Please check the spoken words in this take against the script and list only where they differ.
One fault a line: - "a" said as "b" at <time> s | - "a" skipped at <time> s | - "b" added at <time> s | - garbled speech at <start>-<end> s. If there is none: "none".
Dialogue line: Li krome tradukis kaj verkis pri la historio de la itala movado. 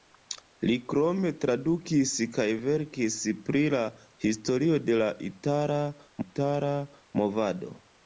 - "itala" added at 6.3 s